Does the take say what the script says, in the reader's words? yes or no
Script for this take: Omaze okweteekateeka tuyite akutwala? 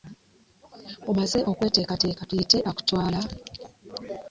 yes